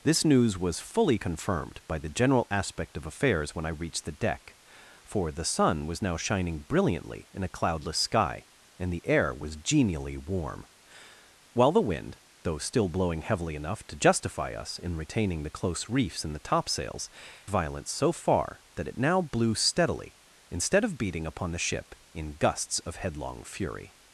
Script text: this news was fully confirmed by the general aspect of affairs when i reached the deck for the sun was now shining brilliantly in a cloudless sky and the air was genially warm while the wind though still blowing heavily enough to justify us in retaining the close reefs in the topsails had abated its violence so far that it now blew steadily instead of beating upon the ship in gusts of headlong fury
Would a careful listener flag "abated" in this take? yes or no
yes